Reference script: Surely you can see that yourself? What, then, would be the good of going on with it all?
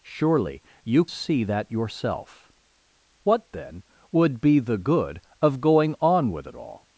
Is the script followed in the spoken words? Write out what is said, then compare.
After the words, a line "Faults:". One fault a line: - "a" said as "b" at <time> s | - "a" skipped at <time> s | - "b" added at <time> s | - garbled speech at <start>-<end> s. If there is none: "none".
Surely you see that yourself? What, then, would be the good of going on with it all?
Faults:
- "can" skipped at 1.1 s